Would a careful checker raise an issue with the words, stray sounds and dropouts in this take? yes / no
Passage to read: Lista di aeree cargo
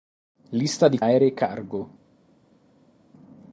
no